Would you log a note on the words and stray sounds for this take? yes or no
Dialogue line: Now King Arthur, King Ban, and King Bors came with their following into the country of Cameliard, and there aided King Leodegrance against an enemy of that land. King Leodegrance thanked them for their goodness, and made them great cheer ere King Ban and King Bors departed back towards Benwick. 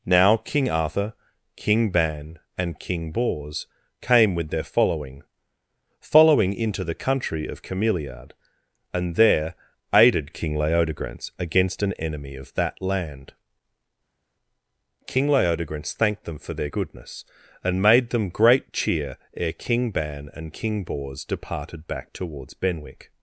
yes